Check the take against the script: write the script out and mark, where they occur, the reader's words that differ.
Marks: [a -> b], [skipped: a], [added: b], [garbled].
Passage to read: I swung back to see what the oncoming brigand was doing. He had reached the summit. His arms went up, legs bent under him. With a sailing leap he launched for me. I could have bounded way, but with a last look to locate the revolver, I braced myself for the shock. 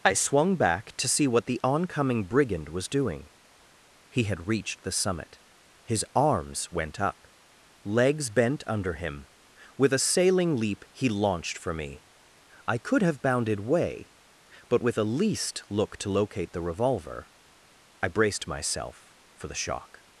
I swung back to see what the oncoming brigand was doing. He had reached the summit. His arms went up, legs bent under him. With a sailing leap he launched for me. I could have bounded way, but with a [last -> least] look to locate the revolver, I braced myself for the shock.